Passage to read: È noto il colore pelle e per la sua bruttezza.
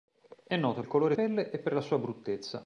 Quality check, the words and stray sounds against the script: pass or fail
pass